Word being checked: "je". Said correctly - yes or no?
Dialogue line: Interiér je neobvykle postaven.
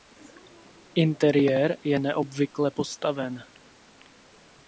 yes